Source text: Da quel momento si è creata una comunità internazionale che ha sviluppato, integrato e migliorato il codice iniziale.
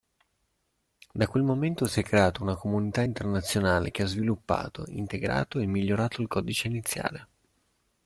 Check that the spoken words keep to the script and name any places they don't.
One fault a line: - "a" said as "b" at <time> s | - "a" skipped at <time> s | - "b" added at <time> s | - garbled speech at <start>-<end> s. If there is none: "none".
none